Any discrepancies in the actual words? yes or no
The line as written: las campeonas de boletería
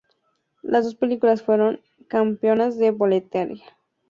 yes